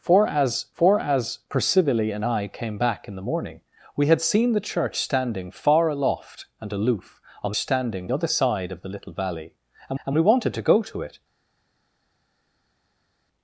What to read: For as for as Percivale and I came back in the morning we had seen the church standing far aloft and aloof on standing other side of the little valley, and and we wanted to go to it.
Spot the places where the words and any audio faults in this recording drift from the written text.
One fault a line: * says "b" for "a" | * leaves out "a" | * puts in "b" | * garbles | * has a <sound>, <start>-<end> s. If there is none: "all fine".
all fine